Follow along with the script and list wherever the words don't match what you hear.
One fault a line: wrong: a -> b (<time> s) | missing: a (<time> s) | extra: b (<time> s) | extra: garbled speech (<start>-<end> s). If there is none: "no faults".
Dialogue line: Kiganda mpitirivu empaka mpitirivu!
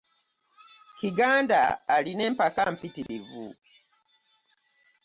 wrong: mpitirivu -> alina (1.9 s)